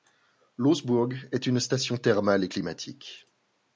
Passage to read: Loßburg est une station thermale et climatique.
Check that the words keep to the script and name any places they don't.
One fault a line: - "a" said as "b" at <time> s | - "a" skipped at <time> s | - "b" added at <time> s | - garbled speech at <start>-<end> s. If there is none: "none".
none